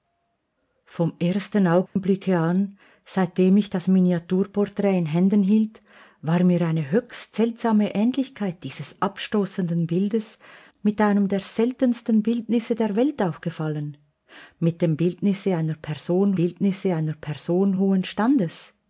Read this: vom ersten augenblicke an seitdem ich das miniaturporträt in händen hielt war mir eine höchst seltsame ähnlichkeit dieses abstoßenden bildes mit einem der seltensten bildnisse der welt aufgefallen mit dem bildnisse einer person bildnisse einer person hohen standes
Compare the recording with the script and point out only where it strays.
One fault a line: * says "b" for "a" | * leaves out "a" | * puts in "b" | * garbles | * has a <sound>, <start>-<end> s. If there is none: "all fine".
* has a dropout, 1.9-2.0 s